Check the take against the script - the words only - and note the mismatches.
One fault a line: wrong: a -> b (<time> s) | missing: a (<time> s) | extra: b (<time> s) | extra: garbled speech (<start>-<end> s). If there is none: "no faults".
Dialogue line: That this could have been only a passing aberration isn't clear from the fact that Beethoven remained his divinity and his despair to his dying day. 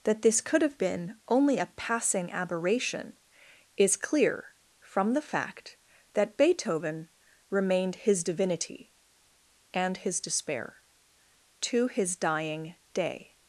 wrong: isn't -> is (3.8 s)